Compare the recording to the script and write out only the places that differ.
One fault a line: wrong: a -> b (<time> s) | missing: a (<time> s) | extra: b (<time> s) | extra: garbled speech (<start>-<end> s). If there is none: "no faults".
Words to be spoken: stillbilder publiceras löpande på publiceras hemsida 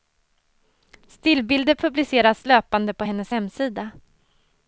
wrong: publiceras -> hennes (3.0 s)